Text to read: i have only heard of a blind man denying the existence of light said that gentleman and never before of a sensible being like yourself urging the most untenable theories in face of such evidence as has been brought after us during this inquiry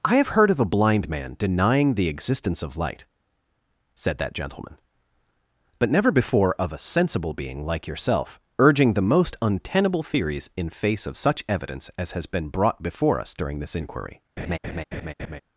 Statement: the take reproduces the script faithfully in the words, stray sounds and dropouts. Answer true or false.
false